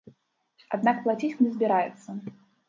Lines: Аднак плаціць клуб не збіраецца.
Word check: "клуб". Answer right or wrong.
wrong